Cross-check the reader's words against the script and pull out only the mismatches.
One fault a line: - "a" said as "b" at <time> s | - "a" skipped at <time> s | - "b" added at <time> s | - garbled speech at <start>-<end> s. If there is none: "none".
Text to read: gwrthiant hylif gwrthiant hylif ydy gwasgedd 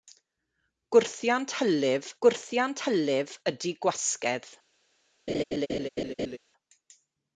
none